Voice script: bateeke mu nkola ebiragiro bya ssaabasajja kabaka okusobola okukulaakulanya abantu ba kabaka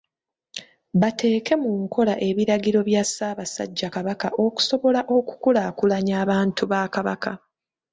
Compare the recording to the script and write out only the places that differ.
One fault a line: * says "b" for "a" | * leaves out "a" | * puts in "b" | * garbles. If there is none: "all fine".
all fine